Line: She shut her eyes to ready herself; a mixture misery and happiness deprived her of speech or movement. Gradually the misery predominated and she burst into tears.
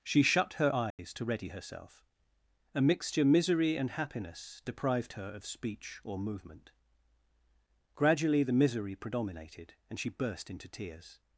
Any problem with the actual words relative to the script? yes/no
no